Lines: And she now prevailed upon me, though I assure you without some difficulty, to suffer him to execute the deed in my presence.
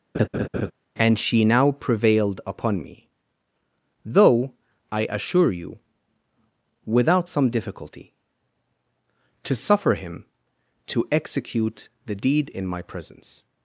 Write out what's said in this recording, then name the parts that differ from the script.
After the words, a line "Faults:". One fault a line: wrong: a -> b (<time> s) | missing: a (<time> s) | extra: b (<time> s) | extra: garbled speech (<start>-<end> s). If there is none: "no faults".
And she now prevailed upon me, though I assure you without some difficulty, to suffer him to execute the deed in my presence.
Faults:
no faults